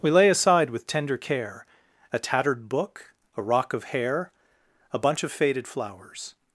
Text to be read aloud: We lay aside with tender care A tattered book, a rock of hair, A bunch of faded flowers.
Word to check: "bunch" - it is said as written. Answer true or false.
true